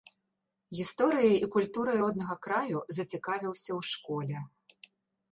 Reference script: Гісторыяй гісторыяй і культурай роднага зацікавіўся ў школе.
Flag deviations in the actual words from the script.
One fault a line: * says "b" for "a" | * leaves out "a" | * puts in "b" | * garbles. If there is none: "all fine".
* leaves out "гісторыяй"
* puts in "краю"